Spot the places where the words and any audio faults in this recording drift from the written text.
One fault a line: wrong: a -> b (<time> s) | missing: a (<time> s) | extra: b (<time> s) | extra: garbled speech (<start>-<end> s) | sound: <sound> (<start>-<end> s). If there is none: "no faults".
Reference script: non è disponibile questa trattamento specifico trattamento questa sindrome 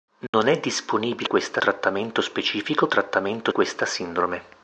sound: dropout (0.3-0.3 s)